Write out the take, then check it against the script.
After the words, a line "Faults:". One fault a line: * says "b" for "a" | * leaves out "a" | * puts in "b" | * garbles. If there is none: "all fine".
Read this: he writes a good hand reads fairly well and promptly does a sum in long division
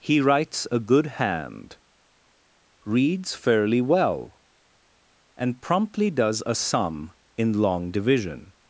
he writes a good hand reads fairly well and promptly does a sum in long division
Faults:
all fine